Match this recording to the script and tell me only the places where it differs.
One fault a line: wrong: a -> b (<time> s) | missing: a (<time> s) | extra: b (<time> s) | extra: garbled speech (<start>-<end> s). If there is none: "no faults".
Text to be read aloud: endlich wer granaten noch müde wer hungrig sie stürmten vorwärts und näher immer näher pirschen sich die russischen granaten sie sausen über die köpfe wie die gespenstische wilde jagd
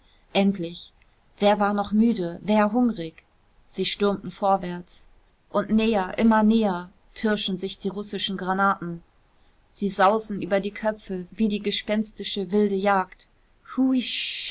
wrong: granaten -> war (1.6 s)